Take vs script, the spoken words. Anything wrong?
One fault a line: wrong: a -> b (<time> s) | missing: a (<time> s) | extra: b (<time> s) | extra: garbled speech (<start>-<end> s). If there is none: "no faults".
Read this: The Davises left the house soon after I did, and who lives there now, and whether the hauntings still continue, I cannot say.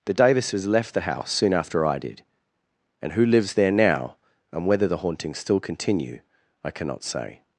no faults